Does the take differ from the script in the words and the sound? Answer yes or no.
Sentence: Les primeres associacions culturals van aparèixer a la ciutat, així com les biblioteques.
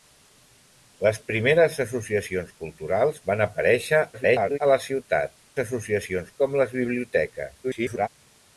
yes